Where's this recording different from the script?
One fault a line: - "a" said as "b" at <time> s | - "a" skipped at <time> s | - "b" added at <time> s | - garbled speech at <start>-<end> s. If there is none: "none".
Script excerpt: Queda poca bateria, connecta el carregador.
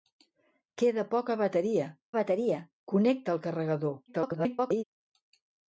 - "bateria" added at 2.2 s
- garbled speech at 4.1-4.8 s